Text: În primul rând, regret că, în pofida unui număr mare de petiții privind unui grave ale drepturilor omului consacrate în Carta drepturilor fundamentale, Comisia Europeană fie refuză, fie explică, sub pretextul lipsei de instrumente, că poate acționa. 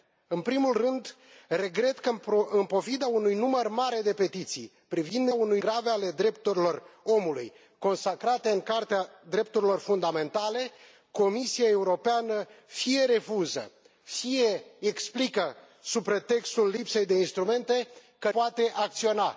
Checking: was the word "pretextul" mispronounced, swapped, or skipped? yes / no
no